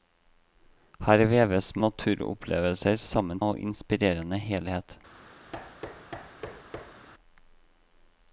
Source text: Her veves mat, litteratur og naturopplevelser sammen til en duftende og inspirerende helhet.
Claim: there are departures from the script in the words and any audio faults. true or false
true